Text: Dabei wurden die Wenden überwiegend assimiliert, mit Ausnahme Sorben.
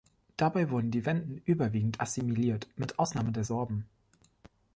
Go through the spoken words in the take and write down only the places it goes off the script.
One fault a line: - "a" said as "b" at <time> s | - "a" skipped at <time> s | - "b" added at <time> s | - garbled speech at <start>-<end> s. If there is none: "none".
- "der" added at 3.3 s